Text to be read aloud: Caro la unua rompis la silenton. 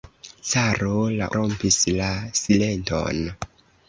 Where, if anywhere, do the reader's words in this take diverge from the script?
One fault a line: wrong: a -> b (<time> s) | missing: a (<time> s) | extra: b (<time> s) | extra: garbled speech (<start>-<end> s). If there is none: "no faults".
missing: unua (1.3 s)